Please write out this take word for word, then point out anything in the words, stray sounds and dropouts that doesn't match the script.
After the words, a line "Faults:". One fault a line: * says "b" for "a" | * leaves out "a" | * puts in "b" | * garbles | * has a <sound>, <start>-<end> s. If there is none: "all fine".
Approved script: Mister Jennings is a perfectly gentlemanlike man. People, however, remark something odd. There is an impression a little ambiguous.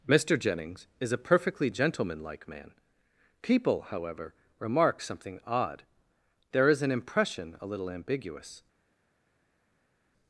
Mister Jennings is a perfectly gentlemanlike man. People, however, remark something odd. There is an impression a little ambiguous.
Faults:
all fine